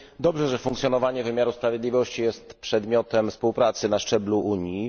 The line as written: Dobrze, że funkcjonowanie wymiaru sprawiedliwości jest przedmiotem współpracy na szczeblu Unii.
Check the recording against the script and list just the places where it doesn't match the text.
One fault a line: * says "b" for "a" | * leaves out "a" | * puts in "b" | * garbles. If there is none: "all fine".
all fine